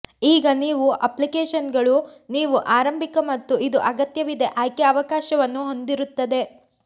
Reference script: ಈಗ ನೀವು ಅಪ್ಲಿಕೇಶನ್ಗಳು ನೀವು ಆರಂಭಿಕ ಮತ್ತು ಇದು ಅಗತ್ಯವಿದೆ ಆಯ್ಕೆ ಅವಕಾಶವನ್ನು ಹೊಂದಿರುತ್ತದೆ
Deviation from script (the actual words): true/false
false